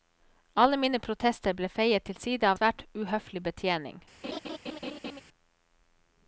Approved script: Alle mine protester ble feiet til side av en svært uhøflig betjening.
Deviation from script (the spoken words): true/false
true